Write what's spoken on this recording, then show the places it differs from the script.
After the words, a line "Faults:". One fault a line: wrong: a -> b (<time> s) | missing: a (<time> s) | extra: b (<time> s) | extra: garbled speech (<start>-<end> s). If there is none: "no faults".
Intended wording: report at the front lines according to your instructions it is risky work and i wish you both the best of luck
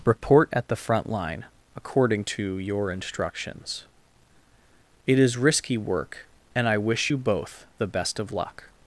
report at the front line according to your instructions it is risky work and i wish you both the best of luck
Faults:
wrong: lines -> line (1.1 s)